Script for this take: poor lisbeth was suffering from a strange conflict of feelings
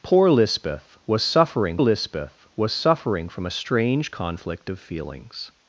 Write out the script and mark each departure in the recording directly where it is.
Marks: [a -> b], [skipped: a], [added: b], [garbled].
poor lisbeth was suffering [added: lisbeth was suffering] from a strange conflict of feelings